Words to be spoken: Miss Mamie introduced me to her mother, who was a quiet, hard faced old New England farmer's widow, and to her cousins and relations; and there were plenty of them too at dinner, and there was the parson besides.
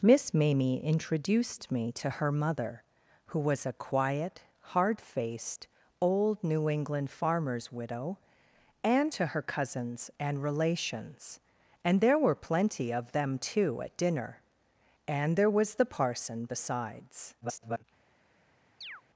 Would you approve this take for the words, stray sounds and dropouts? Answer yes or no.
no